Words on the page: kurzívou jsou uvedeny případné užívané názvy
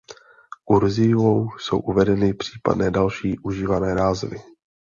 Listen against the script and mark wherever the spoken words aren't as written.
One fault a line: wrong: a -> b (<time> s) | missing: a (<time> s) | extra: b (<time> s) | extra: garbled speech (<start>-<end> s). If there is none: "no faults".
extra: další (2.9 s)